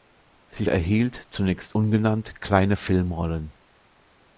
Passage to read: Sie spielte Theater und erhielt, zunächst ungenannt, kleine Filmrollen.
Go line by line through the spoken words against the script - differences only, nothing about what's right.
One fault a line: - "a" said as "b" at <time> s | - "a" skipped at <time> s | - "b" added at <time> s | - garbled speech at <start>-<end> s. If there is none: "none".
- "spielte Theater und" skipped at 0.7 s